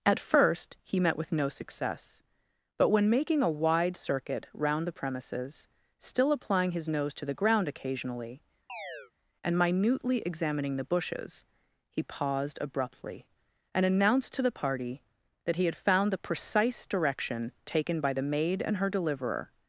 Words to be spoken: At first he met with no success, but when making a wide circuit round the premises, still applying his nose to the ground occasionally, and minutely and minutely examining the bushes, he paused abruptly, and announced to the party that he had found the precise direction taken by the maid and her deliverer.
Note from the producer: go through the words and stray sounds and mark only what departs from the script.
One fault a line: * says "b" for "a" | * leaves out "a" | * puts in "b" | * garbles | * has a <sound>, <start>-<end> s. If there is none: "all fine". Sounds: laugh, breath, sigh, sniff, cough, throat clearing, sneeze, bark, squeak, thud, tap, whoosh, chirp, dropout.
* has a chirp, 8.7-9.1 s
* leaves out "and minutely"